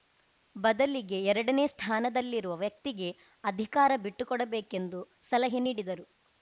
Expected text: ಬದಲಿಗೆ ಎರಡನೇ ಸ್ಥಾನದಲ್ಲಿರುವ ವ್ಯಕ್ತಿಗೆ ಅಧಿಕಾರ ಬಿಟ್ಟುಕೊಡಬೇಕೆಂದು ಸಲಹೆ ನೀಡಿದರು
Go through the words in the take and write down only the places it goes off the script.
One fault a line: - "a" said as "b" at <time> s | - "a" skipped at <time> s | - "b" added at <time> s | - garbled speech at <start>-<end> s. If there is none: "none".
none